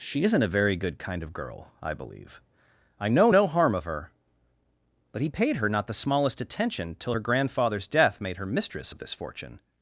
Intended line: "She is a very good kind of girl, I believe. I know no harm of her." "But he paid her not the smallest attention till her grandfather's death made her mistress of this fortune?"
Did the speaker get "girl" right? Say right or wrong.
right